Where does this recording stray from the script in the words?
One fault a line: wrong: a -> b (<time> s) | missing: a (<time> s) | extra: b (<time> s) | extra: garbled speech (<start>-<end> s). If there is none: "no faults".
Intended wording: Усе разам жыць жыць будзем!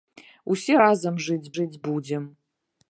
no faults